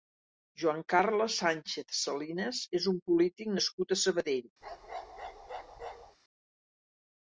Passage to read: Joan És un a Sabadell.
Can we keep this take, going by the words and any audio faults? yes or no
no